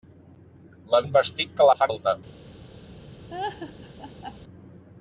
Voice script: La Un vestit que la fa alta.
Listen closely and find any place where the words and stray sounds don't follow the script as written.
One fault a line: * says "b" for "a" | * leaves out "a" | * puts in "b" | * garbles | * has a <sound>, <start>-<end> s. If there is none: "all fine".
* has a laugh, 3.3-4.4 s